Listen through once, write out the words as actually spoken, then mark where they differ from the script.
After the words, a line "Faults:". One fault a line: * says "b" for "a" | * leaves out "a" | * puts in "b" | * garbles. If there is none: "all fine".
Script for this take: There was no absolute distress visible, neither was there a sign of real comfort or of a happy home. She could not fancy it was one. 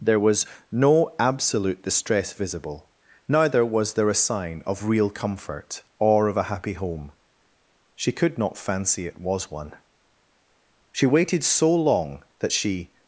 There was no absolute distress visible, neither was there a sign of real comfort or of a happy home. She could not fancy it was one. She waited so long that she
Faults:
* puts in "She waited so long that she"